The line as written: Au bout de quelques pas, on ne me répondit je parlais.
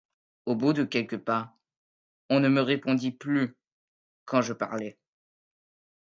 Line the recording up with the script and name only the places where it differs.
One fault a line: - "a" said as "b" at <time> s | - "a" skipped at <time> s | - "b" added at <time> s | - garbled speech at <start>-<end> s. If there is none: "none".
- "plus quand" added at 3.1 s